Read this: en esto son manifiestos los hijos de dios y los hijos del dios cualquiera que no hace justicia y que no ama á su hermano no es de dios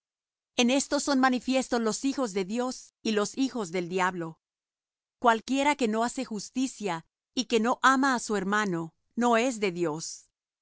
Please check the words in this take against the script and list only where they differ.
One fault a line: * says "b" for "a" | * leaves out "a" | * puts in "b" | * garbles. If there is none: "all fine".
* says "diablo" for "dios"